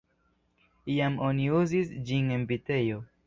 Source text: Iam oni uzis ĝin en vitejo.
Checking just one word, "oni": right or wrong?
right